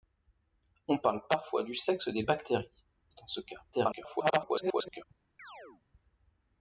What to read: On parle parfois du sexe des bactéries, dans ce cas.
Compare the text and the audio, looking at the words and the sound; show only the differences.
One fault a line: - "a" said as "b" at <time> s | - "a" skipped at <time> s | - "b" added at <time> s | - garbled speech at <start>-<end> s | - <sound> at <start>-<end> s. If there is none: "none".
- garbled speech at 3.7-5.0 s
- chirp at 5.4-5.8 s